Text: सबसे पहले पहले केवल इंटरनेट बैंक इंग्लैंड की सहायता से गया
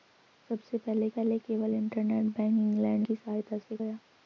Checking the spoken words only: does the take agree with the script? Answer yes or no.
yes